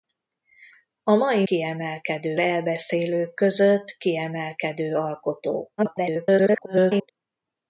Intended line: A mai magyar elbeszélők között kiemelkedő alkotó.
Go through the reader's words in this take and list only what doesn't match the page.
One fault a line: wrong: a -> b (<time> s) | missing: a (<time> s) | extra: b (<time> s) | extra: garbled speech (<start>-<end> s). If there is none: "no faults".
wrong: magyar -> kiemelkedő (1.4 s)
extra: garbled speech (5.8-7.1 s)